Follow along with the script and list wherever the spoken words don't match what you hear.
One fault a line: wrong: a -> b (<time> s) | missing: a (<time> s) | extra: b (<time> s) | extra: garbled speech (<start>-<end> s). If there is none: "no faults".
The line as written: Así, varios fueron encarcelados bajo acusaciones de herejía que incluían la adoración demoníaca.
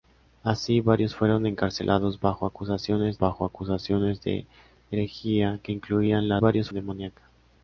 extra: bajo acusaciones (3.2 s)
wrong: adoración -> varios (6.4 s)